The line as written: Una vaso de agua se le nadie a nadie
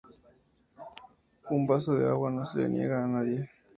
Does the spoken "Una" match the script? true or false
false